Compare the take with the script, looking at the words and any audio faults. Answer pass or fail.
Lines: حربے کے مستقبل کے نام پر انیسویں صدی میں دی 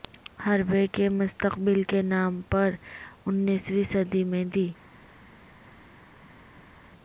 pass